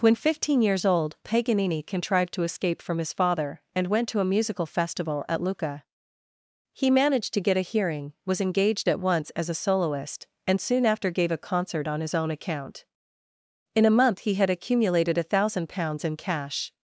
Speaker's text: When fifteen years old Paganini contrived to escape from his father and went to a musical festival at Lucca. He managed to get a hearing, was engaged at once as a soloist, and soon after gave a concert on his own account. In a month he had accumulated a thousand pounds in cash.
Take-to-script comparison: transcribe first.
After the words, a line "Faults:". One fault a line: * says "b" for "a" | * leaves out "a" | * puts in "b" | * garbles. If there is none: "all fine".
When fifteen years old Paganini contrived to escape from his father and went to a musical festival at Lucca. He managed to get a hearing, was engaged at once as a soloist, and soon after gave a concert on his own account. In a month he had accumulated a thousand pounds in cash.
Faults:
all fine